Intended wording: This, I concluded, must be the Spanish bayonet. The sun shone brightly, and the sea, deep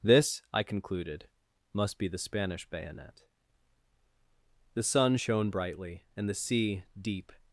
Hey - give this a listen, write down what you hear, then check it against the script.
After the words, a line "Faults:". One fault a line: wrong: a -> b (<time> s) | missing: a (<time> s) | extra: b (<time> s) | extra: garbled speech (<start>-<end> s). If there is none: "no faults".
This, I concluded, must be the Spanish bayonet. The sun shone brightly, and the sea, deep
Faults:
no faults